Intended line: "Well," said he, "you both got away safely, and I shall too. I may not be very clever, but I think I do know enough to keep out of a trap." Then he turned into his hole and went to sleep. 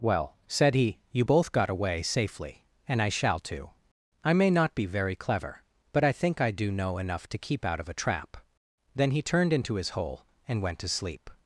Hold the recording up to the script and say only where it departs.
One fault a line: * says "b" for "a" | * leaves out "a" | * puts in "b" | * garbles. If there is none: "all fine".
all fine